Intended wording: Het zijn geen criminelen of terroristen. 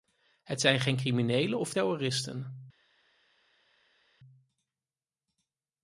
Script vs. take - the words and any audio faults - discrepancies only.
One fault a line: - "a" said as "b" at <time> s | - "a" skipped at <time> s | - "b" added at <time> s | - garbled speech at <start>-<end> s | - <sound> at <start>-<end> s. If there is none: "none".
none